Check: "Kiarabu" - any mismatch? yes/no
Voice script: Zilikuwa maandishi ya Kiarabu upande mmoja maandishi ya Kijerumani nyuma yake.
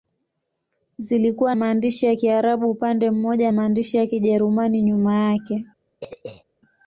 no